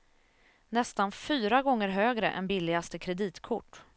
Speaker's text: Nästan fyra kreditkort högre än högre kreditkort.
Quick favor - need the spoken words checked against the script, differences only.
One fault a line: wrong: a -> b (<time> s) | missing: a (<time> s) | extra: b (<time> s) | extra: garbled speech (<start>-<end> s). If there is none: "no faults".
wrong: kreditkort -> gånger (1.6 s)
wrong: högre -> billigaste (2.4 s)